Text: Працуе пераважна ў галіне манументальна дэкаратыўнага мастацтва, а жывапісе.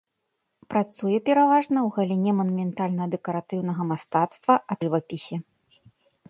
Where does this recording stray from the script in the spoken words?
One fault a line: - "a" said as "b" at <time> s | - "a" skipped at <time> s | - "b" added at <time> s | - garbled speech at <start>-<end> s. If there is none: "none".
none